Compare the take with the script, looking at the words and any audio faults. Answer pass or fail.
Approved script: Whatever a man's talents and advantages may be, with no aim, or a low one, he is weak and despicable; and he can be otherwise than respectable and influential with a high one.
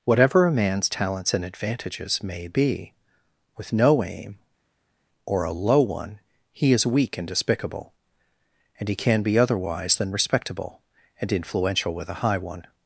pass